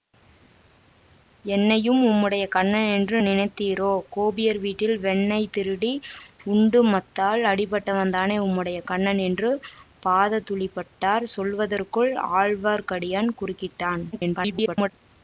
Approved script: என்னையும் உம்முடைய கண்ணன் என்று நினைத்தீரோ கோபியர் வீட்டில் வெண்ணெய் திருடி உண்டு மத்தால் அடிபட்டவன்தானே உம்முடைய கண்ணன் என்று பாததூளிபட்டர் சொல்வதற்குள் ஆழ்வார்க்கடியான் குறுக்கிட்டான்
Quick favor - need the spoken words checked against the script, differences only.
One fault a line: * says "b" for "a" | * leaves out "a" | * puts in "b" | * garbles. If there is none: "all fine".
* garbles